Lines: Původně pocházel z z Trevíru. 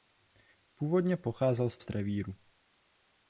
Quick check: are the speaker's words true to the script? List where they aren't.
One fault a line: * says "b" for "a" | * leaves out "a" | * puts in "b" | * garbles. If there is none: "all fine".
all fine